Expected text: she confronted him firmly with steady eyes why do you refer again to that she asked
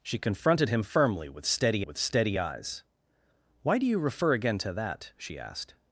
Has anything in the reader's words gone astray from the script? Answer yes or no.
yes